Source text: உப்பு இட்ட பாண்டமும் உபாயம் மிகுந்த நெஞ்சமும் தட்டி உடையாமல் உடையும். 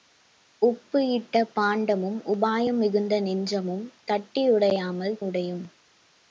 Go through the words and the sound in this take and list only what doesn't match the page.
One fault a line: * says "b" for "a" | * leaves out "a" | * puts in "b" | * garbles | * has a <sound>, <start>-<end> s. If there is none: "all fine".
all fine